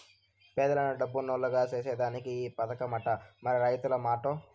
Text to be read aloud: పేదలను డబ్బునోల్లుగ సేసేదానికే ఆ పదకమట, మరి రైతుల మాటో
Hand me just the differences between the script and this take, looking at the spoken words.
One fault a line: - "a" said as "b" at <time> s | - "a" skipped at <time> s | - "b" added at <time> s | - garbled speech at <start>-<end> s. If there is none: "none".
- "ఆ" said as "ఈ" at 2.4 s